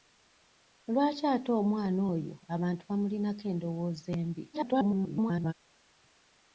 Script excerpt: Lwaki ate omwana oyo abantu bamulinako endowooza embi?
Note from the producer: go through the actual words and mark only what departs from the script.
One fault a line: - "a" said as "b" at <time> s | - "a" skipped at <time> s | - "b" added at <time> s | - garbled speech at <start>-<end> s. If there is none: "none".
- garbled speech at 4.5-5.5 s